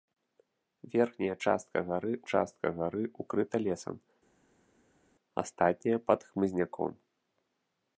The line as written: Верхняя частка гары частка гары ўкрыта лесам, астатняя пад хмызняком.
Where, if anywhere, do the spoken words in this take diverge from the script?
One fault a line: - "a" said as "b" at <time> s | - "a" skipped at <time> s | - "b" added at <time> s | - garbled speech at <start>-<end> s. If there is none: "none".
none